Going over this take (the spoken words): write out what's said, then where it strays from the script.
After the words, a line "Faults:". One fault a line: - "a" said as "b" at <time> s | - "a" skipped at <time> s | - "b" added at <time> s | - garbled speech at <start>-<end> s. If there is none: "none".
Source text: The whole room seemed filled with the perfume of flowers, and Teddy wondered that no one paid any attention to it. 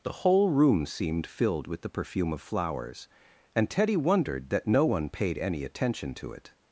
The whole room seemed filled with the perfume of flowers, and Teddy wondered that no one paid any attention to it.
Faults:
none